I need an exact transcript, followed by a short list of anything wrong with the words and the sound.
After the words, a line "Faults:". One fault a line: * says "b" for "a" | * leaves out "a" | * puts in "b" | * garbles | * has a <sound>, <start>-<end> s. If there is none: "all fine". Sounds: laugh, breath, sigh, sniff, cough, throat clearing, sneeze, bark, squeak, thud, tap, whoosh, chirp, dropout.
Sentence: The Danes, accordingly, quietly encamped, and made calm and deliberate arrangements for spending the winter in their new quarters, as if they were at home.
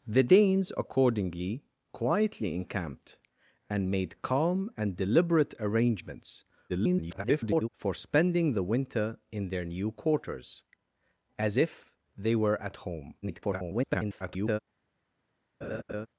The Danes, accordingly, quietly encamped, and made calm and deliberate arrangements [garbled] for spending the winter in their new quarters, as if they were at home. [garbled]
Faults:
* garbles
* garbles
* has a laugh, 15.6-16.1 s